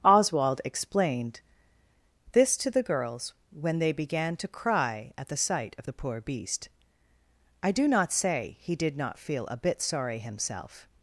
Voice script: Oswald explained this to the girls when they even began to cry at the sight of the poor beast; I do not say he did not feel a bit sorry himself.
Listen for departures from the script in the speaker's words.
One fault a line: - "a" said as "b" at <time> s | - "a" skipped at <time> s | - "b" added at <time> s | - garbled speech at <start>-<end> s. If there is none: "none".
- "even" skipped at 3.9 s